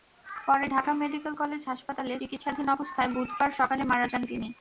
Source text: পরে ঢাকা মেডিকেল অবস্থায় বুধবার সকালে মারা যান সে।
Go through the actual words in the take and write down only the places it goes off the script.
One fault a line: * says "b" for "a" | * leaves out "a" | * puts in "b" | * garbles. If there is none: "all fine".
* puts in "কলেজ হাসপাতালে চিকিৎসাধীন"
* says "তিনি" for "সে"